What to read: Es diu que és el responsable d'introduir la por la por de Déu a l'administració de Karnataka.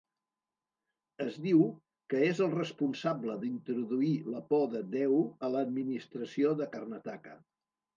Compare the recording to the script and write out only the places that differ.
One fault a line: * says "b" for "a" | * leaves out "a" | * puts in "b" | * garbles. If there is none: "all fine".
* leaves out "la por"